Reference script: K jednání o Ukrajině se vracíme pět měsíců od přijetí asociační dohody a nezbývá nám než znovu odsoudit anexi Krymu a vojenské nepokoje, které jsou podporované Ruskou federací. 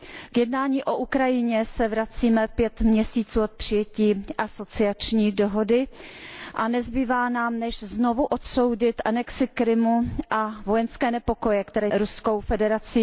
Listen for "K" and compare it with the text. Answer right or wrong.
right